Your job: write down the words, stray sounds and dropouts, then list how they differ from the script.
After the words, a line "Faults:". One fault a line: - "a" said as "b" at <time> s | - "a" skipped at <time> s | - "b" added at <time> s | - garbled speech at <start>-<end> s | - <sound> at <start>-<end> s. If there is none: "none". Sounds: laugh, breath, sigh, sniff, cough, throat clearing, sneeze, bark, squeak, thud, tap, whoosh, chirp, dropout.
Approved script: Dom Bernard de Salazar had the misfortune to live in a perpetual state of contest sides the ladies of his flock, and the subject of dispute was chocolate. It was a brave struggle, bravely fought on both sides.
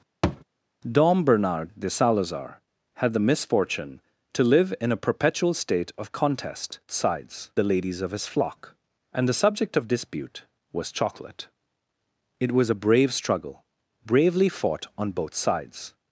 Dom Bernard de Salazar had the misfortune to live in a perpetual state of contest sides the ladies of his flock, and the subject of dispute was chocolate. It was a brave struggle, bravely fought on both sides.
Faults:
- thud at 0.2-0.4 s